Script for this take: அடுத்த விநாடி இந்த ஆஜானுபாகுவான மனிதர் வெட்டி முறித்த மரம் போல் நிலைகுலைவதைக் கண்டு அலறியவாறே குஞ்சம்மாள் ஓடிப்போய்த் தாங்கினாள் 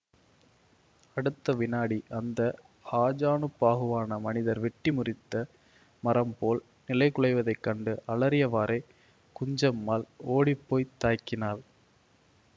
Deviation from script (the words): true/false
true